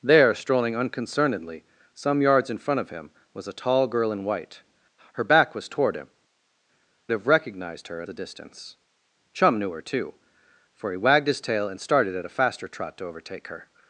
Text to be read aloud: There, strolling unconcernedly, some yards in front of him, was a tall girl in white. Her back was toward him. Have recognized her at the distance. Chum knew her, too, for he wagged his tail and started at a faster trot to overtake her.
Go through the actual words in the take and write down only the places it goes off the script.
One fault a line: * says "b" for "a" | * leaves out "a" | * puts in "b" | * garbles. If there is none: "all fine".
all fine